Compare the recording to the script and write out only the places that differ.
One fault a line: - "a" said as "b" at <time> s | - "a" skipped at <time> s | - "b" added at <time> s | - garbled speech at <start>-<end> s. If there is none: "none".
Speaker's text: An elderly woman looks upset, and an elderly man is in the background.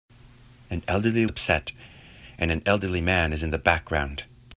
- "woman looks" skipped at 1.2 s